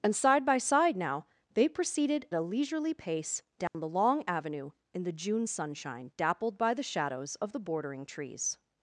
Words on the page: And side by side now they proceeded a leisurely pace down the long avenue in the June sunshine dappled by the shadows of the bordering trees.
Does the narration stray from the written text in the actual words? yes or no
no